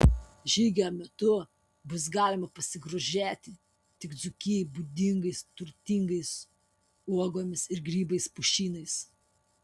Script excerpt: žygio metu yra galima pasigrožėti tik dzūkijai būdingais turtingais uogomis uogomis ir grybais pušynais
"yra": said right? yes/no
no